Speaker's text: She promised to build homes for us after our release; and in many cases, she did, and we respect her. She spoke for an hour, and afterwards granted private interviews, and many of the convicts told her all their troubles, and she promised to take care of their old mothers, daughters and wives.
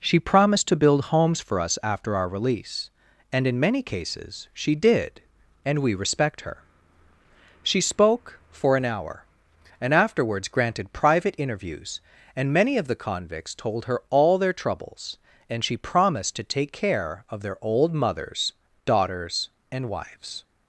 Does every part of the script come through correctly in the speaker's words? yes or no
yes